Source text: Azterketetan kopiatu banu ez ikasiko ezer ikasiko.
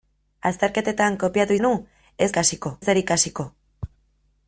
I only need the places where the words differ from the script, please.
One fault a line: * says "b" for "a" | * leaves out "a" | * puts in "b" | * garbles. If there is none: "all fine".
all fine